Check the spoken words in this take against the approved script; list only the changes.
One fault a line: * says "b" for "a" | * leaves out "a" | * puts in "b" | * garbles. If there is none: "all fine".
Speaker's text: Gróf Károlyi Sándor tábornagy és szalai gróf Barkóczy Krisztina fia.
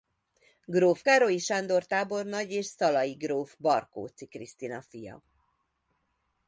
all fine